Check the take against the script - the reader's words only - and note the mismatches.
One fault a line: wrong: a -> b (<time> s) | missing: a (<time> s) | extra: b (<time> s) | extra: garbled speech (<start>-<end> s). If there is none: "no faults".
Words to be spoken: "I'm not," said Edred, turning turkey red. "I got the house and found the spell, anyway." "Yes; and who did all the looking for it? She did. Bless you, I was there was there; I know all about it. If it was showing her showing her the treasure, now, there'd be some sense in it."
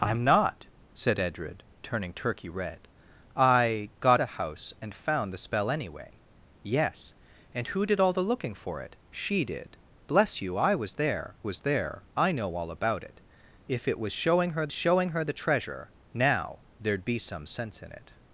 no faults